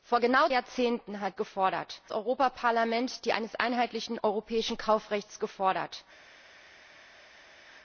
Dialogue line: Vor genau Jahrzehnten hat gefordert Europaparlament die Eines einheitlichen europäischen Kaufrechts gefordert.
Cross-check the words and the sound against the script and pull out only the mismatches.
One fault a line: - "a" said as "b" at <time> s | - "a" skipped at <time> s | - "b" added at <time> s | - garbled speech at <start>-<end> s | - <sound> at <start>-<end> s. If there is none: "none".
none